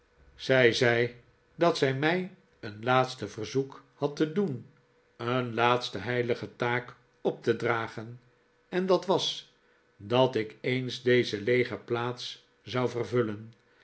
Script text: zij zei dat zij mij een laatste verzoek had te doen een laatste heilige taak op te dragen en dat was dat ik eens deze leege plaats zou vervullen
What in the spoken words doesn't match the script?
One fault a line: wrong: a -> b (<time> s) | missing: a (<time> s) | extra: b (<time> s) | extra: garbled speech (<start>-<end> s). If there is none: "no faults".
no faults